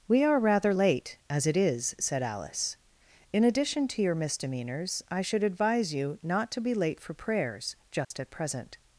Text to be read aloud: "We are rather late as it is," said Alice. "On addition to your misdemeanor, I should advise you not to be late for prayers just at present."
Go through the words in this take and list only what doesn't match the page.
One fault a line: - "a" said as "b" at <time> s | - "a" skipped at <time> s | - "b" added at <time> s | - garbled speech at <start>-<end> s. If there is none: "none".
- "On" said as "In" at 3.3 s
- "misdemeanor" said as "misdemeanors" at 4.2 s